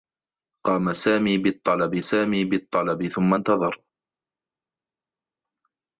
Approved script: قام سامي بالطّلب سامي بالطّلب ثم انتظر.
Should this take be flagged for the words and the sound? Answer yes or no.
no